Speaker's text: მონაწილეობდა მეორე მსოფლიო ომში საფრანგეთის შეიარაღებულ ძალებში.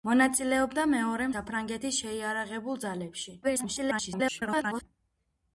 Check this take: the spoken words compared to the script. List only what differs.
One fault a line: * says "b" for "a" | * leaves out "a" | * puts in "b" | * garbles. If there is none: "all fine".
* leaves out "მსოფლიო ომში"
* garbles